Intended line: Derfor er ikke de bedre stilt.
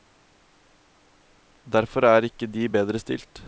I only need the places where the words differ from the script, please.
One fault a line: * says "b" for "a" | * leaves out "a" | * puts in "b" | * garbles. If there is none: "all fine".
all fine